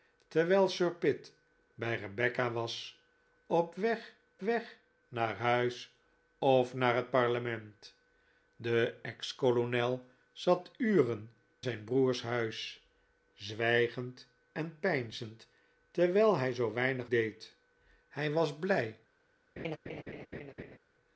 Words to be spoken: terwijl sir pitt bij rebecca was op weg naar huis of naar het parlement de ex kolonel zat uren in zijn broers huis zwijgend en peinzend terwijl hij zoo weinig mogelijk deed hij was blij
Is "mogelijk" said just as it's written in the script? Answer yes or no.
no